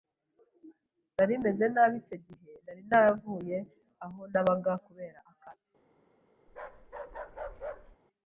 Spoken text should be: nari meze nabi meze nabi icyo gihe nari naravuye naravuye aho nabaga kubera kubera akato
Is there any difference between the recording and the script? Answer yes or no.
yes